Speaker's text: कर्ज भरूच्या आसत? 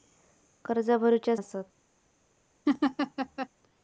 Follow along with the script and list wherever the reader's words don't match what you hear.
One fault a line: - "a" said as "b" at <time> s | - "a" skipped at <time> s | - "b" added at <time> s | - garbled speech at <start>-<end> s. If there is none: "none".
none